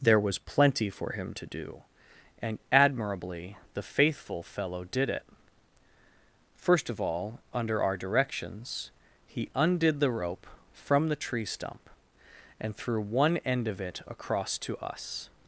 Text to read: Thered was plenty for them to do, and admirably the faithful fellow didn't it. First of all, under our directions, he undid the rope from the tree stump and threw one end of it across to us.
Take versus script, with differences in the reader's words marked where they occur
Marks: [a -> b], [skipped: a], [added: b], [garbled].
[Thered -> There] was plenty for [them -> him] to do, and admirably the faithful fellow [didn't -> did] it. First of all, under our directions, he undid the rope from the tree stump and threw one end of it across to us.